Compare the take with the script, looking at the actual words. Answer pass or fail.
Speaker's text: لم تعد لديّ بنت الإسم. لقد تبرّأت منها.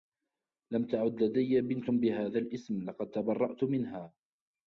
fail